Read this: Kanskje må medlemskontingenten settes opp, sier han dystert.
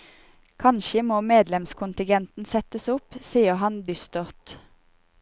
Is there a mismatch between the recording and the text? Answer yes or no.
no